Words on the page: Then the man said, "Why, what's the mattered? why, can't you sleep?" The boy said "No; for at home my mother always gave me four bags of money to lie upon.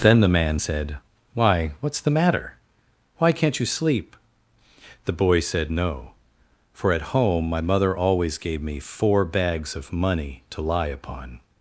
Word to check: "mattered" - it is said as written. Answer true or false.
false